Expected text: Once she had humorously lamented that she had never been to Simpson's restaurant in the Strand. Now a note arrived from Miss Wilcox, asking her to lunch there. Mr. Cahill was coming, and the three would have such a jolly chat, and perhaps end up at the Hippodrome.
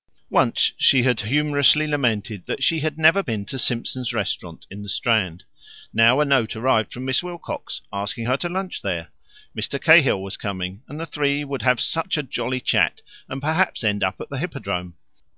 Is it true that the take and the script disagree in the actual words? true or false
false